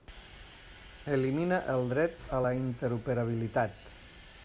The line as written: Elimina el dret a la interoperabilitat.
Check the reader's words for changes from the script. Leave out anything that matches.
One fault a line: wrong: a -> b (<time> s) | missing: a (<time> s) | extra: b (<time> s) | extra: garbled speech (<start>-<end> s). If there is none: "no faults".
no faults